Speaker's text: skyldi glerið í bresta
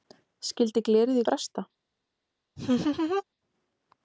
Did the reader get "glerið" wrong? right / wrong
right